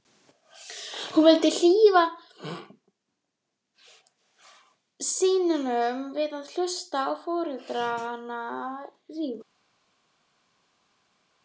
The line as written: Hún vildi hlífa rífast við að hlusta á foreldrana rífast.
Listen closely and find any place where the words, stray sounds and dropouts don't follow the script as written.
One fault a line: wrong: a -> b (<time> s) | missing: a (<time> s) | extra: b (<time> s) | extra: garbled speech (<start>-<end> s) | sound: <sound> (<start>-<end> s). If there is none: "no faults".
wrong: rífast -> syninum (5.1 s)